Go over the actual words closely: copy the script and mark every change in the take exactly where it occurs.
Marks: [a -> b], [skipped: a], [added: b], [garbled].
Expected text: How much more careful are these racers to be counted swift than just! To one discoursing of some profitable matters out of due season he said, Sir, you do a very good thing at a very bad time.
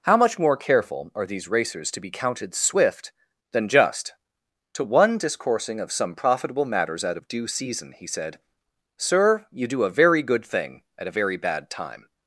How much more careful are these racers to be counted swift than just! To one discoursing of some profitable matters out of due season he said, Sir, you do a very good thing at a very bad time.